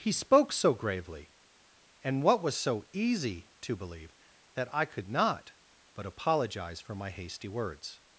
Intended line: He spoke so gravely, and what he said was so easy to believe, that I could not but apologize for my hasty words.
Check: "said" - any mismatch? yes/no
yes